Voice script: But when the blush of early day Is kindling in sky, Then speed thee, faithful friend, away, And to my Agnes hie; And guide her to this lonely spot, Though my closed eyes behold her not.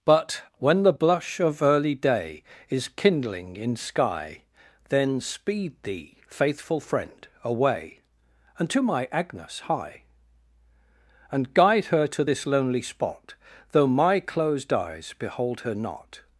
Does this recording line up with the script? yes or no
yes